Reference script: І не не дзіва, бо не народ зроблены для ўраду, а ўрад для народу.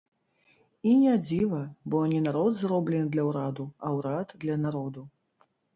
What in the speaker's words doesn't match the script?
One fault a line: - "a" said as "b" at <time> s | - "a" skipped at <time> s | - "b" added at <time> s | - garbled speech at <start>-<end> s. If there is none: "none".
- "не" skipped at 1.1 s